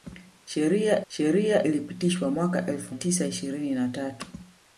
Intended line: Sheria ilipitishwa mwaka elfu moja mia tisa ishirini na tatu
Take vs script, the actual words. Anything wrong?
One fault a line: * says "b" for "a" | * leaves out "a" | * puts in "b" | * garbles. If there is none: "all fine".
* puts in "sheria"
* leaves out "moja mia"